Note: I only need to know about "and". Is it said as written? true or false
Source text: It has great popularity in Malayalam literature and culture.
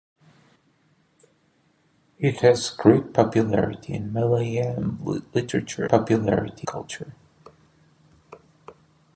false